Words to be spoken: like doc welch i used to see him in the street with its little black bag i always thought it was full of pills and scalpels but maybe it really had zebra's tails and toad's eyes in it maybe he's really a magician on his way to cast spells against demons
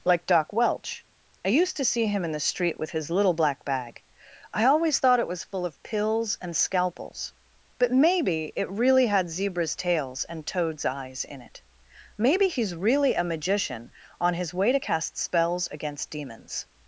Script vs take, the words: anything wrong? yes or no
yes